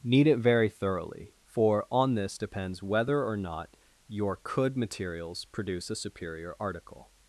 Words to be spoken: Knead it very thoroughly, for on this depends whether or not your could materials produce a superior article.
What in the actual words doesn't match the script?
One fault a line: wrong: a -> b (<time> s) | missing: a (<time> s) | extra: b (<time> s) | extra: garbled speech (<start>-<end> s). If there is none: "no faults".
no faults